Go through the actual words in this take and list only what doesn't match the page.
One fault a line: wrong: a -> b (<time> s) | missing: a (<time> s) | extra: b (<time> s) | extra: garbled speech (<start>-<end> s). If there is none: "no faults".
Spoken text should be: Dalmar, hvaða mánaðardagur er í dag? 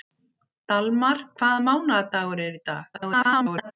extra: garbled speech (2.9-3.7 s)